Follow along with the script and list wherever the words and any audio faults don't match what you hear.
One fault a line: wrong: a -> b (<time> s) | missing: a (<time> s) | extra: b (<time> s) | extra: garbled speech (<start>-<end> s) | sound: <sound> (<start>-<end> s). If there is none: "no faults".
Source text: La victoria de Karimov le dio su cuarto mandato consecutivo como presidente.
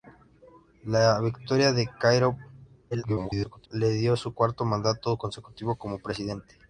extra: garbled speech (2.9-3.7 s)